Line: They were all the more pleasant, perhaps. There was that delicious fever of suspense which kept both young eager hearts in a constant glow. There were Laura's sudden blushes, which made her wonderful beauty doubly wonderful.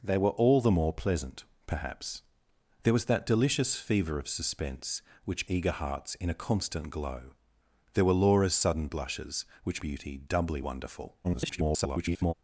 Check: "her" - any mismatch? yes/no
yes